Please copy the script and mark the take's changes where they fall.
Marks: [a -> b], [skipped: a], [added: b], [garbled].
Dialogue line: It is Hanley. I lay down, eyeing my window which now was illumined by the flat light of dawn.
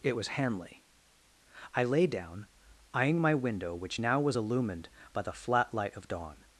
It [is -> was] Hanley. I lay down, eyeing my window which now was illumined by the flat light of dawn.